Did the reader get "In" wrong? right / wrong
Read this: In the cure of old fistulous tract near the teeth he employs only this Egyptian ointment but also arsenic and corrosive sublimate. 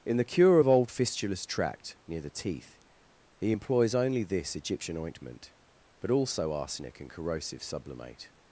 right